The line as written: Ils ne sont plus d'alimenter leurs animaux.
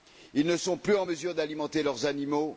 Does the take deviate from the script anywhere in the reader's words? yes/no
yes